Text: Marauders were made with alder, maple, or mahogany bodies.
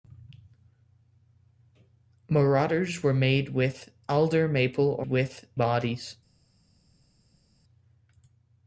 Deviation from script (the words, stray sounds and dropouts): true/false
true